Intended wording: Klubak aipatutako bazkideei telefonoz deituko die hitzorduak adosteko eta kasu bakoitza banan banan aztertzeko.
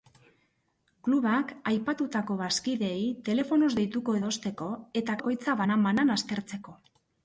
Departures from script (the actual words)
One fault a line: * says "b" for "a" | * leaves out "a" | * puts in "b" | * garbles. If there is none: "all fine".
* leaves out "die hitzorduak"
* leaves out "kasu"